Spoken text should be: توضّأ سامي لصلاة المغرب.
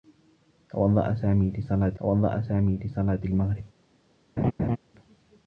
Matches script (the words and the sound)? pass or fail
fail